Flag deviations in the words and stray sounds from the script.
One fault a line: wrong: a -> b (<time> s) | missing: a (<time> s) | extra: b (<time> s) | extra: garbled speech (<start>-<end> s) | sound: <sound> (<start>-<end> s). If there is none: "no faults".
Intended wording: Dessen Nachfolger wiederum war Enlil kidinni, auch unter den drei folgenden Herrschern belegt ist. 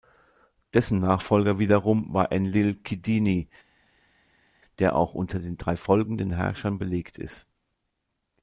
extra: der (4.8 s)